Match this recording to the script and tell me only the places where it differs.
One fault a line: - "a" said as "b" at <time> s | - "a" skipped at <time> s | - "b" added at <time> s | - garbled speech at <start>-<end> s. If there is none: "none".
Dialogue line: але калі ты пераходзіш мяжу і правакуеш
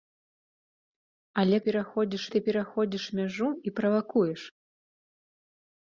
- "калі" said as "пераходзіш" at 1.7 s